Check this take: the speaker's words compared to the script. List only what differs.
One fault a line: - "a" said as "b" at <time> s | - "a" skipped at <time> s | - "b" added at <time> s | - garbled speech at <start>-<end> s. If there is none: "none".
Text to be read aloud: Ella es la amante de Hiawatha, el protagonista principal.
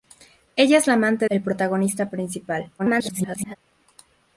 - "de Hiawatha" skipped at 1.3 s
- garbled speech at 2.8-3.6 s